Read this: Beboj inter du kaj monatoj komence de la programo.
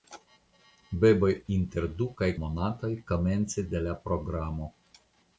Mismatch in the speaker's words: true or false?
false